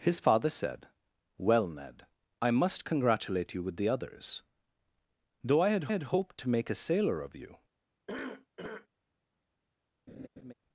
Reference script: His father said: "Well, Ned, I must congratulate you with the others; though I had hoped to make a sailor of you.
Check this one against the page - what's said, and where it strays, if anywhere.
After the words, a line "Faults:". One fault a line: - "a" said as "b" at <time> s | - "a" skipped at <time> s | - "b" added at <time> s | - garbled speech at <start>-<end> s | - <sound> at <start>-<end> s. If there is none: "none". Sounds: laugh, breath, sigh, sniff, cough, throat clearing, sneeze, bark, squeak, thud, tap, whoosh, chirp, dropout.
His father said: "Well, Ned, I must congratulate you with the others; though I had had hoped to make a sailor of you.
Faults:
- "had" added at 5.9 s
- cough at 8.1-8.9 s
- laugh at 10.1-10.5 s